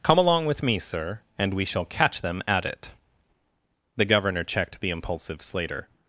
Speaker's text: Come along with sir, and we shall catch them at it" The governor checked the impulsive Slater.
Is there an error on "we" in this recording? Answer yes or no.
no